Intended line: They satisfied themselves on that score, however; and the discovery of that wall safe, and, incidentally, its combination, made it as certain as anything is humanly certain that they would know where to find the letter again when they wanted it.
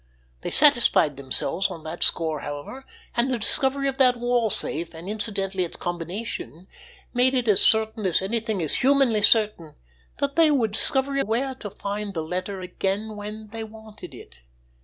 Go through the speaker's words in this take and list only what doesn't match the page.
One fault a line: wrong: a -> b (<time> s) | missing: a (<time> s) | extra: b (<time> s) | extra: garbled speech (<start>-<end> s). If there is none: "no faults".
wrong: know -> discovery (10.7 s)